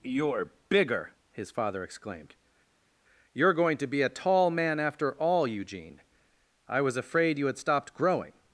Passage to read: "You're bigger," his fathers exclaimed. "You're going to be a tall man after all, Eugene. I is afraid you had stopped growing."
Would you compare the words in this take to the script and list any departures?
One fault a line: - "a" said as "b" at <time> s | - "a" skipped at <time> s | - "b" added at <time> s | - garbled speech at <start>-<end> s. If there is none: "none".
- "fathers" said as "father" at 1.5 s
- "is" said as "was" at 6.8 s